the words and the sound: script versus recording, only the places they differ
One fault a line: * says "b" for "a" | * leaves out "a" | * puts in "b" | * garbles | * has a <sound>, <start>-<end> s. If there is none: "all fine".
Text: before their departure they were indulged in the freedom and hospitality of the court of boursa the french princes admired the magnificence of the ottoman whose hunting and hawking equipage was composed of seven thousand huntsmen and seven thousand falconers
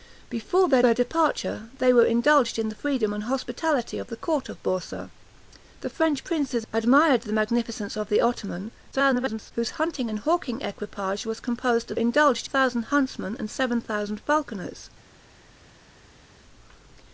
* puts in "their"
* garbles
* says "indulged" for "seven"